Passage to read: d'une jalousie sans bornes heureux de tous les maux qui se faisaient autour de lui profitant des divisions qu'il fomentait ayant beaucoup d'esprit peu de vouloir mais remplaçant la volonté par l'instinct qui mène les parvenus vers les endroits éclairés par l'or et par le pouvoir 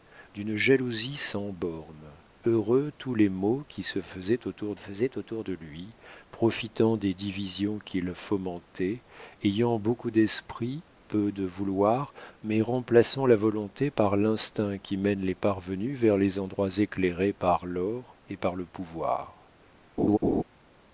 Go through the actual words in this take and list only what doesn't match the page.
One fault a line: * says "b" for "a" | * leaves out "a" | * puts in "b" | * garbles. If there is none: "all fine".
* leaves out "de"
* puts in "faisaient autour"